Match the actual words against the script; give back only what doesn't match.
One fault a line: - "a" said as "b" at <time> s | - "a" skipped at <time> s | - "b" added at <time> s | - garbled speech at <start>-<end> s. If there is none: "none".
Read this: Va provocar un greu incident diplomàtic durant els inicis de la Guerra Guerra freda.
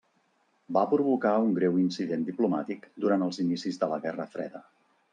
- "Guerra" skipped at 4.3 s